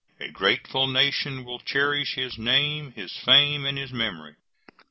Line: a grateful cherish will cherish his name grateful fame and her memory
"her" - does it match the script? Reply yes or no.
no